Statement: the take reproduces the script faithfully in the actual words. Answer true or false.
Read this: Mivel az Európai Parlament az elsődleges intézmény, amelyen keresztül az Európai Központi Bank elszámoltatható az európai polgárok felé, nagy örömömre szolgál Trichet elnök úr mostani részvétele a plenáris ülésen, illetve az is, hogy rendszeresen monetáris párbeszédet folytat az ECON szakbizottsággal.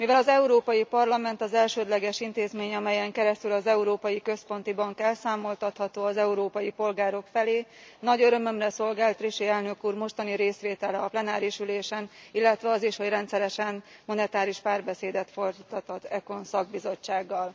true